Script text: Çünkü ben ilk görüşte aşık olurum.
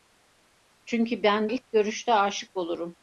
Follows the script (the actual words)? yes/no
yes